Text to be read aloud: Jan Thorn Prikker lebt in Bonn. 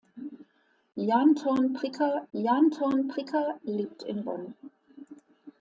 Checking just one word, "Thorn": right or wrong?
right